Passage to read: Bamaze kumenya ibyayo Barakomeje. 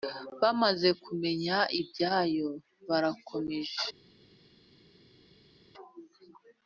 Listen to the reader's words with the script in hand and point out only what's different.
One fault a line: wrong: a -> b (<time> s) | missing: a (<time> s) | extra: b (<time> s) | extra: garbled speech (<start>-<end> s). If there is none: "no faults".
no faults